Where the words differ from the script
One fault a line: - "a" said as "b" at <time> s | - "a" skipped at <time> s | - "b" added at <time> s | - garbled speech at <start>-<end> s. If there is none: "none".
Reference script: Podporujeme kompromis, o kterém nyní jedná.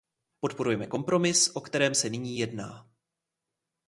- "se" added at 1.9 s